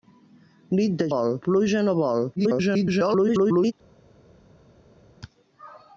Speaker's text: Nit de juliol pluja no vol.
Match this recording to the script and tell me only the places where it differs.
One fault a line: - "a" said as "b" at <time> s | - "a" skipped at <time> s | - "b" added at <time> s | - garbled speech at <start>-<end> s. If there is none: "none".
- "juliol" said as "vol" at 1.1 s
- garbled speech at 2.4-3.7 s